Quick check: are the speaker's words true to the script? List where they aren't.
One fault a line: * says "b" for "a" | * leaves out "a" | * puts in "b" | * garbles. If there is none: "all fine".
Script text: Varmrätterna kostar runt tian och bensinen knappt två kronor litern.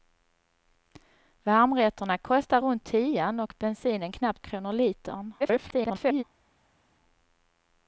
* leaves out "två"
* garbles